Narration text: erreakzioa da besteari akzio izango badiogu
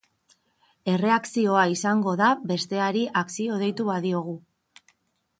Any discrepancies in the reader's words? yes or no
yes